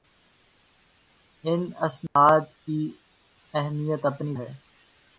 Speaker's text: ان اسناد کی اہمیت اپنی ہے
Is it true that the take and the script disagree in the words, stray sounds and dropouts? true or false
true